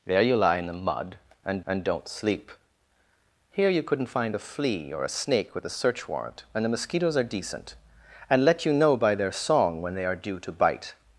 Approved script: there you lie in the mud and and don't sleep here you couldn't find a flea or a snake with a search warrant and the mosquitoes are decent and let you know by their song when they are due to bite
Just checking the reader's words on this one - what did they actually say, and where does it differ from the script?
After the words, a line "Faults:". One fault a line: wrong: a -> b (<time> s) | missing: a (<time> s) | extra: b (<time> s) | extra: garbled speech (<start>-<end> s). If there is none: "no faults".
there you lie in the mud and and don't sleep here you couldn't find a flea or a snake with a search warrant and the mosquitoes are decent and let you know by their song when they are due to bite
Faults:
no faults